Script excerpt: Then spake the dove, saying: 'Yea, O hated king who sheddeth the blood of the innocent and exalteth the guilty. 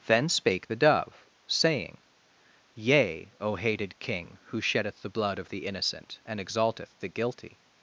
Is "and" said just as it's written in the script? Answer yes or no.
yes